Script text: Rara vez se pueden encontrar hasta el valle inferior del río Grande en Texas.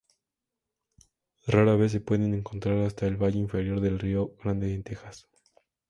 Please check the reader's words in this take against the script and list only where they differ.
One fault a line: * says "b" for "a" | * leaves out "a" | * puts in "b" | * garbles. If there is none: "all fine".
all fine